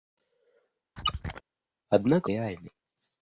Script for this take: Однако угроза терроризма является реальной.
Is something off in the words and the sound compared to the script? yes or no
yes